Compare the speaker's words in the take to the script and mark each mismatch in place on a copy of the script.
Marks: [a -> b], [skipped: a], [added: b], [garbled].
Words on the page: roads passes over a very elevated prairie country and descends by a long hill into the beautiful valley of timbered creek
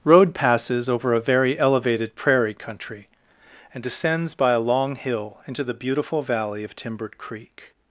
[roads -> road] passes over a very elevated prairie country and descends by a long hill into the beautiful valley of timbered creek